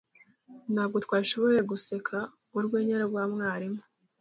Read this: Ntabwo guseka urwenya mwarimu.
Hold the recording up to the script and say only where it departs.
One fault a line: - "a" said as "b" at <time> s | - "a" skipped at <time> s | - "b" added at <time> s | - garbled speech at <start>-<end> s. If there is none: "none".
- "twashoboye" added at 1.0 s
- "rwa" added at 3.1 s